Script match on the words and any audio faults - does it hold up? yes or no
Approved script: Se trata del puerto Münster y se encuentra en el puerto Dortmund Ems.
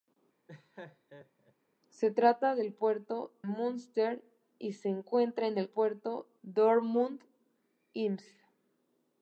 no